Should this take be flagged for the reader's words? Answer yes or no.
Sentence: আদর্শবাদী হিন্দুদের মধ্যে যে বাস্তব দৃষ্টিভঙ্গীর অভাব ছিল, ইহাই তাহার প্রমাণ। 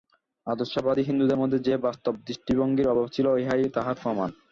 no